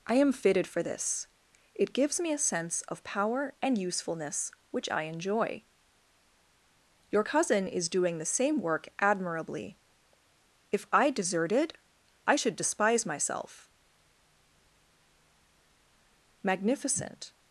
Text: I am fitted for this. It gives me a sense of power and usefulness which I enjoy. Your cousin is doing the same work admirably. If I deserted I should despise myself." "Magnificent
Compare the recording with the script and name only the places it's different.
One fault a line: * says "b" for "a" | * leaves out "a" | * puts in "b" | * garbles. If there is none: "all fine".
all fine